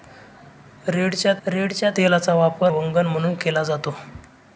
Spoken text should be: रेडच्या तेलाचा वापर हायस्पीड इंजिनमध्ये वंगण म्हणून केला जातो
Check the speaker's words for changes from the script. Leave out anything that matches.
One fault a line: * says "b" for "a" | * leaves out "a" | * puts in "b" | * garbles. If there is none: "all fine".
* puts in "रेडच्या"
* leaves out "हायस्पीड इंजिनमध्ये"